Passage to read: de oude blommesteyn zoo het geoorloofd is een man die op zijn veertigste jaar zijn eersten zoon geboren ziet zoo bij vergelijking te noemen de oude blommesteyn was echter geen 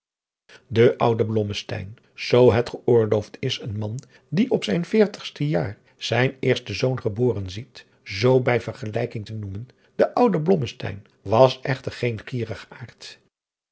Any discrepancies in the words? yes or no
no